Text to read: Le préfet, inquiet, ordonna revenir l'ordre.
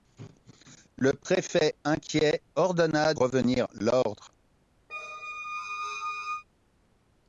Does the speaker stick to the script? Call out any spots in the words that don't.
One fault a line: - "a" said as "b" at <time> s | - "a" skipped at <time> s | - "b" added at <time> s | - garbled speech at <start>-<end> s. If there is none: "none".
none